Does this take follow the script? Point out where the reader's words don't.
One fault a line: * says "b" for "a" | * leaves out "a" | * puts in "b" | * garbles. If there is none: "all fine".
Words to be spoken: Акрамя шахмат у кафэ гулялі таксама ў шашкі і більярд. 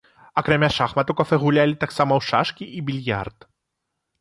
all fine